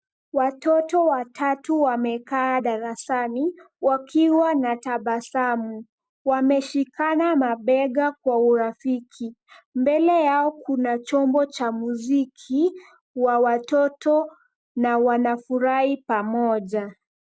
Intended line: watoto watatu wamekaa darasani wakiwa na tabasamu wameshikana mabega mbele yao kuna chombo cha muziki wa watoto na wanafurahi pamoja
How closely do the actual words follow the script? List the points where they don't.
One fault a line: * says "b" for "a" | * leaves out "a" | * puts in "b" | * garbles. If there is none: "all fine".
* puts in "kwa urafiki"